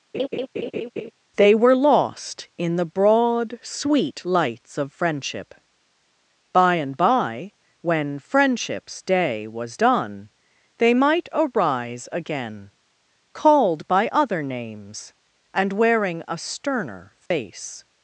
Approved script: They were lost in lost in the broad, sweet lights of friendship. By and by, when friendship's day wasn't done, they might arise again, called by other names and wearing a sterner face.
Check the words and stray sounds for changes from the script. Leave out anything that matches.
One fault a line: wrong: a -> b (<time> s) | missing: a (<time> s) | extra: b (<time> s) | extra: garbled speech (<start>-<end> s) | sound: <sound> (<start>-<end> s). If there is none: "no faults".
sound: laugh (0.1-1.1 s)
missing: lost in (2.8 s)
wrong: wasn't -> was (9.5 s)
sound: dropout (17.3-17.3 s)